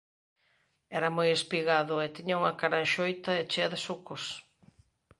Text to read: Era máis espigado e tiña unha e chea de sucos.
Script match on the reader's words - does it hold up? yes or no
no